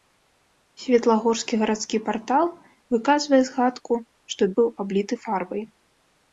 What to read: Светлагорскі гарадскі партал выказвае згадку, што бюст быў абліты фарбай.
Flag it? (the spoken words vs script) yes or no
yes